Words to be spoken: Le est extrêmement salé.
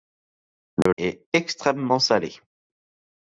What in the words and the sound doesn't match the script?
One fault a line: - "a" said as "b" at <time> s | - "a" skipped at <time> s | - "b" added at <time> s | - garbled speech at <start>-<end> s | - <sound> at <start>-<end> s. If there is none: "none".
- dropout at 0.8-0.9 s